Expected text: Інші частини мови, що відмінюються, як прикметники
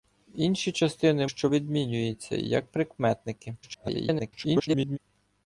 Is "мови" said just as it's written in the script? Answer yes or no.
no